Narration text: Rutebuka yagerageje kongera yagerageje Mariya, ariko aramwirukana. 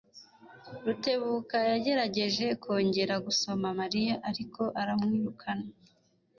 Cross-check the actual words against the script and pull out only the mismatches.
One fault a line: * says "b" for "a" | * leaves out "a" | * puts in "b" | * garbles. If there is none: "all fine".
* says "gusoma" for "yagerageje"